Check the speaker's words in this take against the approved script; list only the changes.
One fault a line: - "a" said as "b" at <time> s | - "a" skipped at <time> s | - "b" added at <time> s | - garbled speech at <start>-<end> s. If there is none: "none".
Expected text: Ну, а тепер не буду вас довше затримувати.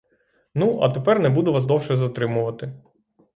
none